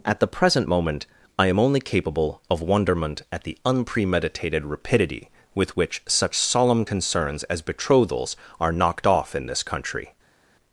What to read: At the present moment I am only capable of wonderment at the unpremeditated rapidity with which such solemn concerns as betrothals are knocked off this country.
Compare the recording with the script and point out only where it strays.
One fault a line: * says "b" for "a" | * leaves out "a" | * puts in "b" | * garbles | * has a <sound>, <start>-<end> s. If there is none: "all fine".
* puts in "in"